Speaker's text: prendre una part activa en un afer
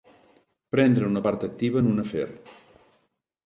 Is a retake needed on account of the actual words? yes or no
no